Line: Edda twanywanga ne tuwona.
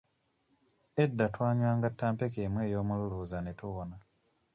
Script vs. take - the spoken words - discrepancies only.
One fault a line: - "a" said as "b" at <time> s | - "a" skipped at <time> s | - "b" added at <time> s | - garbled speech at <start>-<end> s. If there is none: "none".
- "ttampeko emu ey'omululuuza" added at 1.9 s